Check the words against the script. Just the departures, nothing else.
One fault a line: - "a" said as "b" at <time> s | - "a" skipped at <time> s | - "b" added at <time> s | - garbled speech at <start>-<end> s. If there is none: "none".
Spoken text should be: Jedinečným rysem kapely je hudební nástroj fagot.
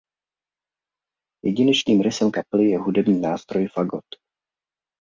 none